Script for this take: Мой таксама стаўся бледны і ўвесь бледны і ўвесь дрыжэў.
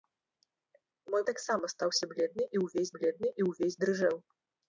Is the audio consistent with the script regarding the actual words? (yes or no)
yes